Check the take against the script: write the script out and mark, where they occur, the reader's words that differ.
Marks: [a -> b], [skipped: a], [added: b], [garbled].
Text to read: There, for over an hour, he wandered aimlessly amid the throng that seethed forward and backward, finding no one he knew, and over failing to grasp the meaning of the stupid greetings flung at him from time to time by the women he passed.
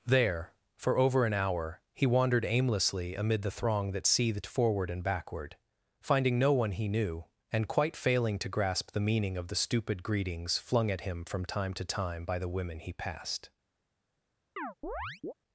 There, for over an hour, he wandered aimlessly amid the throng that seethed forward and backward, finding no one he knew, and [over -> quite] failing to grasp the meaning of the stupid greetings flung at him from time to time by the women he passed.